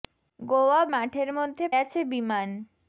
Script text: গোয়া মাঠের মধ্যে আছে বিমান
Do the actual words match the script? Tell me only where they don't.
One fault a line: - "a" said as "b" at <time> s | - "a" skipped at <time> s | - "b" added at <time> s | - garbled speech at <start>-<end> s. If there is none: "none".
none